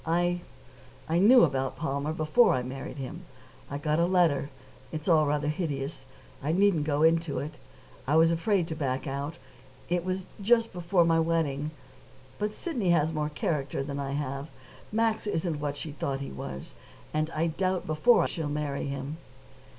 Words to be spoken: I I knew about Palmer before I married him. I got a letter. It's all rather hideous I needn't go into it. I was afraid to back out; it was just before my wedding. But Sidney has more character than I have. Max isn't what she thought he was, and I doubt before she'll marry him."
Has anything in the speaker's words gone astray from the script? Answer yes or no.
no